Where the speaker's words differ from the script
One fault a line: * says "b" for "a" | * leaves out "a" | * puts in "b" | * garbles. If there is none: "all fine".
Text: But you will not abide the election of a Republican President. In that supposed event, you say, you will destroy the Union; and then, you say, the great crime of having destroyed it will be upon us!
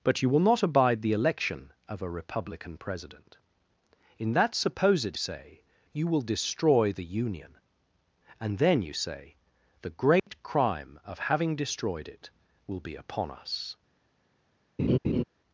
* leaves out "event you"